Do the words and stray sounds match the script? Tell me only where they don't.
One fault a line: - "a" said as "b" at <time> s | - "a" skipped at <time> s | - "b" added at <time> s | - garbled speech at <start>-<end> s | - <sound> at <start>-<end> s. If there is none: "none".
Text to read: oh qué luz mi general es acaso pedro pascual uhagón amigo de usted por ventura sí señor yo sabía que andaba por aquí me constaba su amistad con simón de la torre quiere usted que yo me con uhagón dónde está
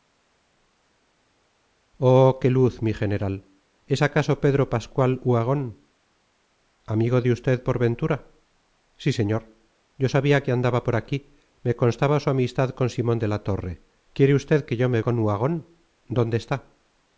none